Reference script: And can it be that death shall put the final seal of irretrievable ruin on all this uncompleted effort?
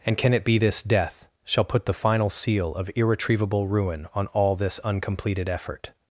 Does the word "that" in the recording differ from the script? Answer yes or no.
yes